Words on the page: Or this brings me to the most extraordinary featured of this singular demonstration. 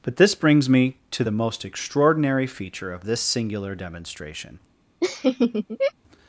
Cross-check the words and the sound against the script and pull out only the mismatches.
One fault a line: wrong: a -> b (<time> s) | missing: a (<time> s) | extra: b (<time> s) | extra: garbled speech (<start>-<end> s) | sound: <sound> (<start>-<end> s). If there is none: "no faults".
wrong: Or -> But (0.0 s)
wrong: featured -> feature (2.5 s)
sound: laugh (5.0-5.9 s)